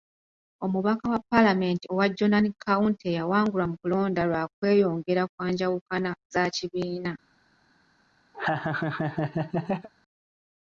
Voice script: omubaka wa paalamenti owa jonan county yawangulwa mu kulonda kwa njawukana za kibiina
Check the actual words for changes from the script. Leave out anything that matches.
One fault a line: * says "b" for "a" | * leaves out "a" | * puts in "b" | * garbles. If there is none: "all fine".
* puts in "lwa kweyongera"